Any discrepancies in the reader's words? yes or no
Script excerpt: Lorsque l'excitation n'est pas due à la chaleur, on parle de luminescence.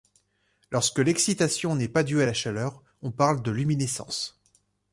no